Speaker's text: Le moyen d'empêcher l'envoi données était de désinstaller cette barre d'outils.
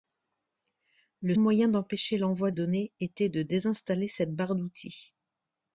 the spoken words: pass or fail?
pass